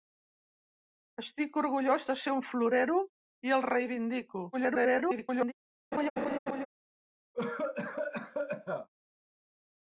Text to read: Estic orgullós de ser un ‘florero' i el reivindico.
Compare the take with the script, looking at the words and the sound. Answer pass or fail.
fail